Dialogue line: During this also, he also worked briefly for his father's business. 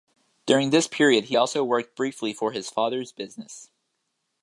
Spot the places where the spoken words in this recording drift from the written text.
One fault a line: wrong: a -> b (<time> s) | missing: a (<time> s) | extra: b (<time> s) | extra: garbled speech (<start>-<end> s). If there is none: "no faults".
wrong: also -> period (0.9 s)